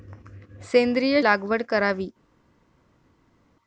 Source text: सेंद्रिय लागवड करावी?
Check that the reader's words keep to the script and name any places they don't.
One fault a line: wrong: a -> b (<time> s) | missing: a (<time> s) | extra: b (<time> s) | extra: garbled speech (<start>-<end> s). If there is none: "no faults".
no faults